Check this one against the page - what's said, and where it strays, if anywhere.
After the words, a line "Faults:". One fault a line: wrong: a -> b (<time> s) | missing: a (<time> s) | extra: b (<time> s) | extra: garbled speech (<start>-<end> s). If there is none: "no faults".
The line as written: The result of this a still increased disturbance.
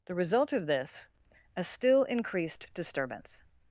The result of this a still increased disturbance.
Faults:
no faults